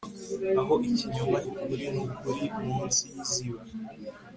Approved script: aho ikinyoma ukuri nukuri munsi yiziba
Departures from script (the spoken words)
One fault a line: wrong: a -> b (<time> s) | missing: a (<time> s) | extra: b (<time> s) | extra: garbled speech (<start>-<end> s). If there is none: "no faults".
no faults